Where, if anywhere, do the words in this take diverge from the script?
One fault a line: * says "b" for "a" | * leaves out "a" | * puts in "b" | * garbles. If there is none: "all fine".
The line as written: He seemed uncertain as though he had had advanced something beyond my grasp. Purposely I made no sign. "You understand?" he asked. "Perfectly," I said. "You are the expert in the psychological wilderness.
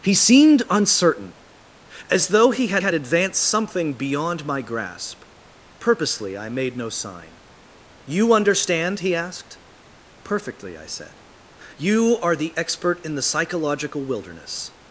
all fine